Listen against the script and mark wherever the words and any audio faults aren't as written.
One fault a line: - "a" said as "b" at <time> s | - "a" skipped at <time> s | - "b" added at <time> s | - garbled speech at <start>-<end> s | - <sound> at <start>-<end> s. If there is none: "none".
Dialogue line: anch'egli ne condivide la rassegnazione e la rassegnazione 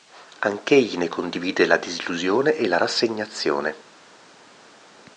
- "rassegnazione" said as "disillusione" at 1.8 s